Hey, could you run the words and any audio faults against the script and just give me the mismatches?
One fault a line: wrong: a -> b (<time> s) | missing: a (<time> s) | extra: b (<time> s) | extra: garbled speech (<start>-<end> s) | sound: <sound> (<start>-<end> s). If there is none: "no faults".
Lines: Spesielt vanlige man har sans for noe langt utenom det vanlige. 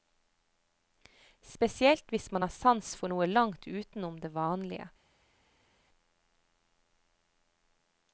wrong: vanlige -> hvis (2.1 s)